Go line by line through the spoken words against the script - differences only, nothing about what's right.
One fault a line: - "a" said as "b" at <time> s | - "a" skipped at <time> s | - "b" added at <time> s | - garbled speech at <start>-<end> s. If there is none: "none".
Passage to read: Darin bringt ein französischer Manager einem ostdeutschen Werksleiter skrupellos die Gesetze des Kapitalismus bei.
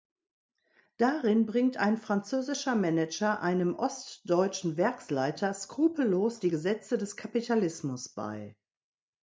none